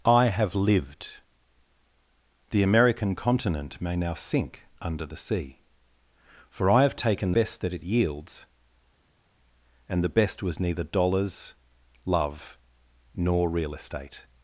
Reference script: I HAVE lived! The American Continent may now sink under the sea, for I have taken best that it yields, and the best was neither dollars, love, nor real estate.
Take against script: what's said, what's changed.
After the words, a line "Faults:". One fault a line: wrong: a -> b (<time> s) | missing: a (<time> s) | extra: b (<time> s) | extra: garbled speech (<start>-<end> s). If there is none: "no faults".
I HAVE lived! The American Continent may now sink under the sea, for I have taken best that it yields, and the best was neither dollars, love, nor real estate.
Faults:
no faults